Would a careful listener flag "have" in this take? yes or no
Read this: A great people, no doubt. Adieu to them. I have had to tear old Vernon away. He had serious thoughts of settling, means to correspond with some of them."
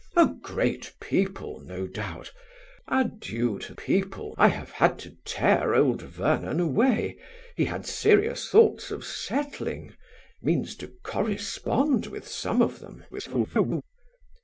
no